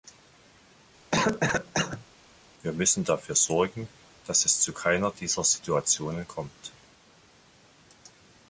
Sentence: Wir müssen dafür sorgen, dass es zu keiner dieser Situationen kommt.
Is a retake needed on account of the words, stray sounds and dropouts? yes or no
yes